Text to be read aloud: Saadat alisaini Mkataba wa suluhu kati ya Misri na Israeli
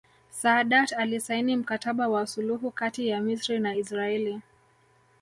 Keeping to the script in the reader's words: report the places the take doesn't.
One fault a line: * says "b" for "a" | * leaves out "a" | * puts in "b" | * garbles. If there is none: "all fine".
all fine